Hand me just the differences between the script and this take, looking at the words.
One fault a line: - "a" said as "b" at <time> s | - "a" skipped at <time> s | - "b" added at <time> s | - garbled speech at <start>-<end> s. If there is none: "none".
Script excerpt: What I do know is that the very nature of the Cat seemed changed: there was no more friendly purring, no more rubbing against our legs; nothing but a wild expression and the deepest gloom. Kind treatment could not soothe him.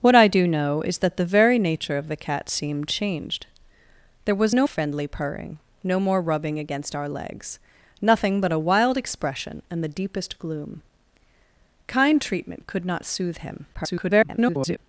- "more" skipped at 4.7 s
- garbled speech at 13.7-14.8 s